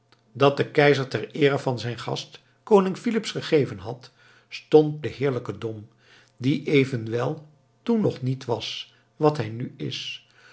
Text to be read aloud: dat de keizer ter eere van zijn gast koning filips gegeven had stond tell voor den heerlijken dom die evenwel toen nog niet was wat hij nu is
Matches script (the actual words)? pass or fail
fail